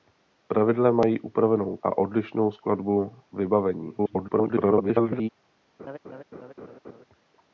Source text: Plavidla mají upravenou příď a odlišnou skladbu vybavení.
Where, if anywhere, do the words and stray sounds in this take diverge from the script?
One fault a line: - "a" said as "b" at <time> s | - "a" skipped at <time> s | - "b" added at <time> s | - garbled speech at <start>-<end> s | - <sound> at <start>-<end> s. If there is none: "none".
- "příď" skipped at 1.8 s
- garbled speech at 4.0-5.3 s
- laugh at 5.8-7.0 s